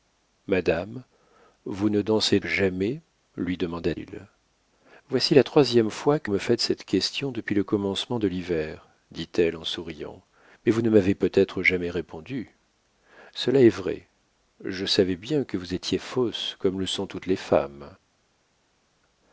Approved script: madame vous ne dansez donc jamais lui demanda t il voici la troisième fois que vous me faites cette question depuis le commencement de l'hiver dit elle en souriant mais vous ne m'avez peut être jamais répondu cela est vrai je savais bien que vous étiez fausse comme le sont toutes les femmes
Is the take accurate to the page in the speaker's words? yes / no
no